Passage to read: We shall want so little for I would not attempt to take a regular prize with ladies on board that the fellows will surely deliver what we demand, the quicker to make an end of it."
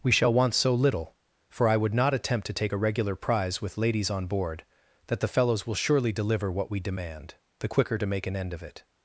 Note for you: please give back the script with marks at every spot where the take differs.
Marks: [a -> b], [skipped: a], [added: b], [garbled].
We shall want so little for I would not attempt to take a regular prize with ladies on board that the fellows will surely deliver what we demand, the quicker to make an end of it."